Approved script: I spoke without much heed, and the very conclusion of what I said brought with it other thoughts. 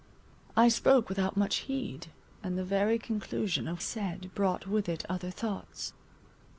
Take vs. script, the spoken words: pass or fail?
fail